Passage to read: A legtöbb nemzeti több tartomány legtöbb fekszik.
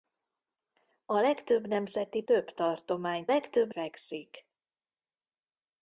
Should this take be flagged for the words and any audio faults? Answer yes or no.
no